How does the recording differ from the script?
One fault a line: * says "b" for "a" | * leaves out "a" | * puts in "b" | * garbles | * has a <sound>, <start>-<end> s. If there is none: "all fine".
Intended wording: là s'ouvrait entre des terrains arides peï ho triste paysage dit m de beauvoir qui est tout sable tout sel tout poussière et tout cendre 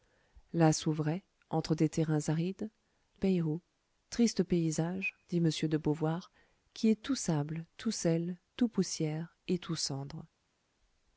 all fine